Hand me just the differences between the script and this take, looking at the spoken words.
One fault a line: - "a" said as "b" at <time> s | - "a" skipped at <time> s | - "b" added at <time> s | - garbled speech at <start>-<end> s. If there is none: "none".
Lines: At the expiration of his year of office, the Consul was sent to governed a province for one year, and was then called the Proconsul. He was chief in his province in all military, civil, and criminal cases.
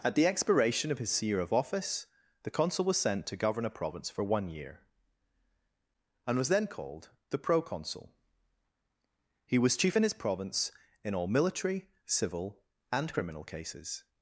- "governed" said as "govern" at 3.4 s